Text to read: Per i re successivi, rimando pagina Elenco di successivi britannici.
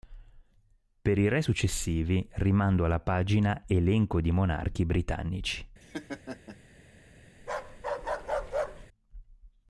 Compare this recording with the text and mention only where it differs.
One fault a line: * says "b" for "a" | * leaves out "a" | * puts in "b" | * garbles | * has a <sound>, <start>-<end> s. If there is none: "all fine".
* puts in "alla"
* says "monarchi" for "successivi"
* has a laugh, 5.8-6.6 s
* has a bark, 7.4-8.9 s